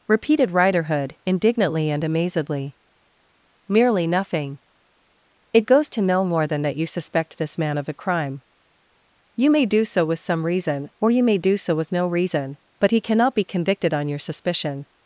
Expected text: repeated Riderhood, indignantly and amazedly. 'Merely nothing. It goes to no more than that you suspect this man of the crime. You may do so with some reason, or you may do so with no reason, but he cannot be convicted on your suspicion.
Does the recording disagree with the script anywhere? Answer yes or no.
yes